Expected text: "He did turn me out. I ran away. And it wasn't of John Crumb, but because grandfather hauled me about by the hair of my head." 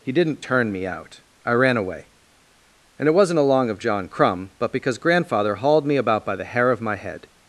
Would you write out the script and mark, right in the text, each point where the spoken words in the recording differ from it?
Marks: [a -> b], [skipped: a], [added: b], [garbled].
"He [did -> didn't] turn me out. I ran away. And it wasn't [added: along] of John Crumb, but because grandfather hauled me about by the hair of my head."